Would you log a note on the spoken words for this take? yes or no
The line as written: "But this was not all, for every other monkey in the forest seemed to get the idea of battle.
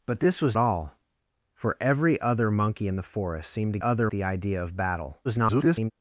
yes